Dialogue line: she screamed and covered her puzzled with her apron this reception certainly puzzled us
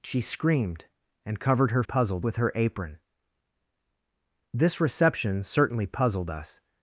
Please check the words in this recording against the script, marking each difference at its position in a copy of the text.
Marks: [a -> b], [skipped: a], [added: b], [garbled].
she screamed and covered her puzzled with her apron this reception certainly puzzled us